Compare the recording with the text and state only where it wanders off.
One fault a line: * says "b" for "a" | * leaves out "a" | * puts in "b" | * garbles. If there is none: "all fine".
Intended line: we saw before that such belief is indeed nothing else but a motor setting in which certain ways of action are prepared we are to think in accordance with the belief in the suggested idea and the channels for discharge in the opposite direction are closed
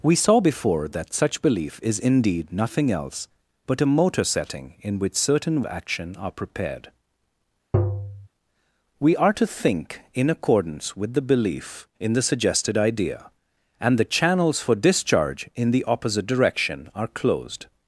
* leaves out "ways of"